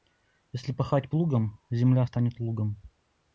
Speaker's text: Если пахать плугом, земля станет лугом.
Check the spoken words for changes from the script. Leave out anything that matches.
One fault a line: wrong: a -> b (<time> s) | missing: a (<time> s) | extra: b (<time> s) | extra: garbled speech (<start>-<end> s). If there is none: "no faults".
no faults